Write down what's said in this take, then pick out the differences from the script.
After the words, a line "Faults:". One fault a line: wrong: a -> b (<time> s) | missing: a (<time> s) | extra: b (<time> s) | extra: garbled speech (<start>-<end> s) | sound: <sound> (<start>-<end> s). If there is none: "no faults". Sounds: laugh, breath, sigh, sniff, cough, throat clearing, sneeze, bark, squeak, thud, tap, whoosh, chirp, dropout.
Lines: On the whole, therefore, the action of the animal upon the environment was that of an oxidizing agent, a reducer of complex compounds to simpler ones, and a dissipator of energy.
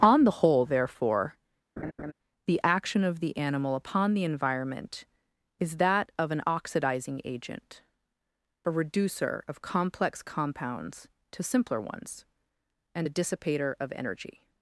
On the whole, therefore, the action of the animal upon the environment is that of an oxidizing agent, a reducer of complex compounds to simpler ones, and a dissipator of energy.
Faults:
sound: laugh (1.8-2.1 s)
wrong: was -> is (5.6 s)